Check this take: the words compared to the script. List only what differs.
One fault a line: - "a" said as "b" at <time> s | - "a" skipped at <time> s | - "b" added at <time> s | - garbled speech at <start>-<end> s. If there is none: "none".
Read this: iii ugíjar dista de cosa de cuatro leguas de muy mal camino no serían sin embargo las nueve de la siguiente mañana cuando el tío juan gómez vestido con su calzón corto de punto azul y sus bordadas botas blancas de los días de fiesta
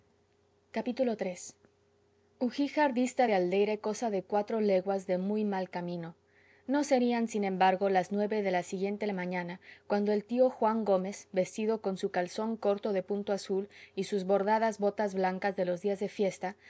- "aldeire" added at 3.3 s